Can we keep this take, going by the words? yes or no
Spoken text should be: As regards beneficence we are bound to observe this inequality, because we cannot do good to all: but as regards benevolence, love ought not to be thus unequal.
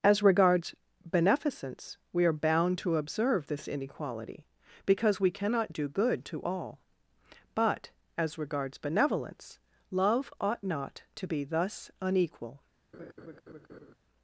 yes